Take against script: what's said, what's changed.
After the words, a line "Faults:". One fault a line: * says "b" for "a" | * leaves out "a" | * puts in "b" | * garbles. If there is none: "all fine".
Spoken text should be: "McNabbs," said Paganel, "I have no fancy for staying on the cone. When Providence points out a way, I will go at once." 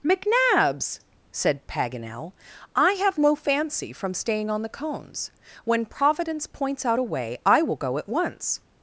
"McNabbs," said Paganel, "I have no fancy from staying on the cones. When Providence points out a way, I will go at once."
Faults:
* says "from" for "for"
* says "cones" for "cone"